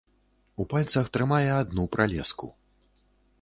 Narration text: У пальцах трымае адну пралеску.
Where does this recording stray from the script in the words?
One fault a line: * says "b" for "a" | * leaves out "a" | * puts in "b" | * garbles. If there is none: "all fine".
all fine